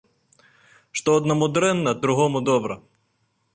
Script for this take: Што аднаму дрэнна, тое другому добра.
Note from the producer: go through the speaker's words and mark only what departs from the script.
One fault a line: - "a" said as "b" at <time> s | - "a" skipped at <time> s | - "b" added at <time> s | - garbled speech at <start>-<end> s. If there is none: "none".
- "тое" skipped at 1.9 s